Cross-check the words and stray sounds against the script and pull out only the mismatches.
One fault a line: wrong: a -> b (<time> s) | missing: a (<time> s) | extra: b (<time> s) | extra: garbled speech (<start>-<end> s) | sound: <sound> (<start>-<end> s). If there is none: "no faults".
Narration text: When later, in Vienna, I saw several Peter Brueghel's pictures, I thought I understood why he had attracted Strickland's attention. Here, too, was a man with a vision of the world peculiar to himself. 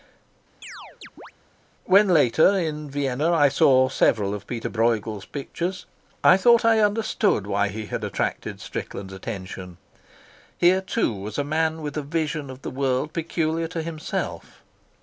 sound: chirp (0.6-1.3 s)
extra: of (4.3 s)